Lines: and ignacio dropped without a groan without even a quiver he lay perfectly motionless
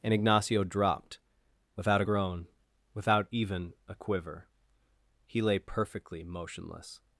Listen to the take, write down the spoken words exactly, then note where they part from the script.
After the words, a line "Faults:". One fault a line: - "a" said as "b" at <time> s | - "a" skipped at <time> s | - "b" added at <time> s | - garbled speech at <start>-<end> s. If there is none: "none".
and ignacio dropped without a groan without even a quiver he lay perfectly motionless
Faults:
none